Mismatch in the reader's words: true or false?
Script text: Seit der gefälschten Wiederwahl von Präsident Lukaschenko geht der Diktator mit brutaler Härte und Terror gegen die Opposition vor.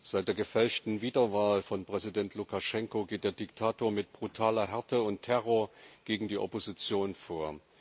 false